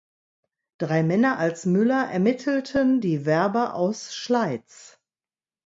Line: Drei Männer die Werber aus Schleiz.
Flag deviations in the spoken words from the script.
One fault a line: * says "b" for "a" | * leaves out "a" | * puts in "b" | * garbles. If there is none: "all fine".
* puts in "als Müller ermittelten"